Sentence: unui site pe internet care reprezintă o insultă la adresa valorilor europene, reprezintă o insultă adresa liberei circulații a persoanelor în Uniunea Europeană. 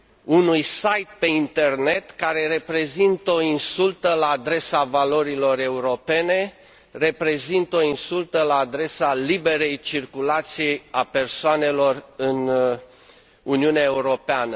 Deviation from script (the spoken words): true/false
true